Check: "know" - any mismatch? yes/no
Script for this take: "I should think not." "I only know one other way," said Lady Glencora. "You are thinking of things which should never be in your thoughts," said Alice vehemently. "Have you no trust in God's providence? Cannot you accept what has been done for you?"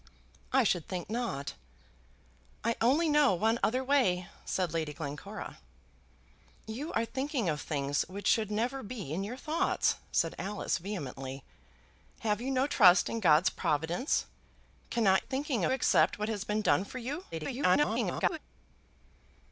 no